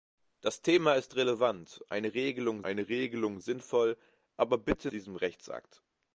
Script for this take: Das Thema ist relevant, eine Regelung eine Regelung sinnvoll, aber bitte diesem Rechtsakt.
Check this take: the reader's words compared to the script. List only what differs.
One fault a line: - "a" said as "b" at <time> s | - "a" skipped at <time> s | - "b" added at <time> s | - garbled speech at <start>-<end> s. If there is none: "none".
none